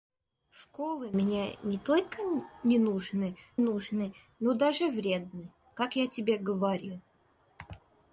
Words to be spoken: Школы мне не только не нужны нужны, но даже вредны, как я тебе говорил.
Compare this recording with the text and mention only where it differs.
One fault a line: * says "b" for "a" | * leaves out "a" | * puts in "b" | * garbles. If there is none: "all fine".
all fine